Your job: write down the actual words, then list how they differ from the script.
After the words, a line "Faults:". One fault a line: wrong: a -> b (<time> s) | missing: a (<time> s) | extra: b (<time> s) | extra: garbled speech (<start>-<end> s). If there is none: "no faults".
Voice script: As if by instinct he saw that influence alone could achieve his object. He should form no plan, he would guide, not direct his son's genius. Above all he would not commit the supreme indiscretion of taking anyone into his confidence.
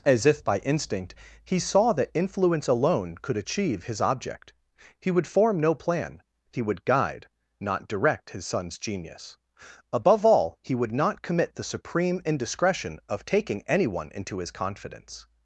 As if by instinct he saw that influence alone could achieve his object. He would form no plan, he would guide, not direct his son's genius. Above all he would not commit the supreme indiscretion of taking anyone into his confidence.
Faults:
wrong: should -> would (5.1 s)